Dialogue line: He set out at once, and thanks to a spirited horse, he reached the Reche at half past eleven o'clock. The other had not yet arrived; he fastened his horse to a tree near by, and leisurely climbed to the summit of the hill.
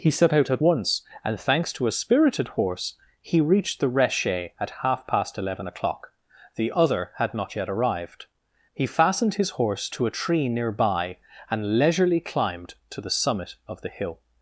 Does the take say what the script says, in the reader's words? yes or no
yes